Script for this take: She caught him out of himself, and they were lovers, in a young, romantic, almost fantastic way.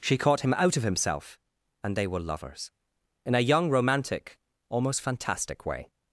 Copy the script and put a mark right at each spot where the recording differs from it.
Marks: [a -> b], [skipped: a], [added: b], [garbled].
She caught him out of himself, and they were lovers, in a young, romantic, almost fantastic way.